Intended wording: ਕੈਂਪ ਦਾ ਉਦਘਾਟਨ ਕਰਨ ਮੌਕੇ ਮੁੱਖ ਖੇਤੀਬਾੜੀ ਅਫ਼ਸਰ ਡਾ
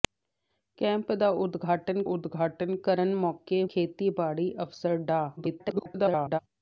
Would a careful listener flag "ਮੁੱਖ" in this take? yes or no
yes